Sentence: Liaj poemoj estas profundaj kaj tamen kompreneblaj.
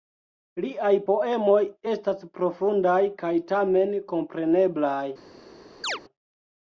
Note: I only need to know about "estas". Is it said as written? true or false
true